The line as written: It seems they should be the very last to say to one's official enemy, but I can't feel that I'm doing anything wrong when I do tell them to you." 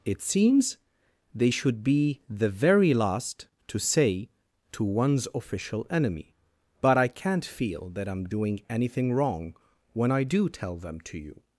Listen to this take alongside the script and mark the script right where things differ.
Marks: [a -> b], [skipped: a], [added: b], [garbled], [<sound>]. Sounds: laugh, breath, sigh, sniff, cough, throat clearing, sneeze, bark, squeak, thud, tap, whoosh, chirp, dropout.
It seems they should be the very last to say to one's official enemy, but I can't feel that I'm doing anything wrong when I do tell them to you."